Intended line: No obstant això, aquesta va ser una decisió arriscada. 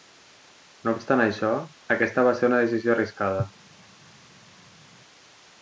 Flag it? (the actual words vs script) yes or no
no